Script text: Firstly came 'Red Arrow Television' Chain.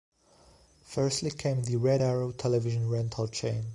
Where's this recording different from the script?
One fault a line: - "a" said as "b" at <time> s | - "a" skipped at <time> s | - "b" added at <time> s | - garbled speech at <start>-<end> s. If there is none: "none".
- "the" added at 1.6 s
- "Rental" added at 2.9 s